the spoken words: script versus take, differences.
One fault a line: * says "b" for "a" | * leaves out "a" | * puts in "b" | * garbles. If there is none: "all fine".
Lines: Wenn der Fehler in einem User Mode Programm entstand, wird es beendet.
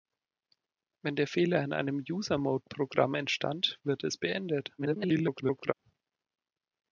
* garbles